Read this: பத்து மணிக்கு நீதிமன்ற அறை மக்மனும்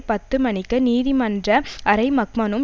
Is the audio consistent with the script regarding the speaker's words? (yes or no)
yes